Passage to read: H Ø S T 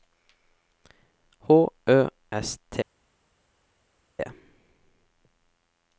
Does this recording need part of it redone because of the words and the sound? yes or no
no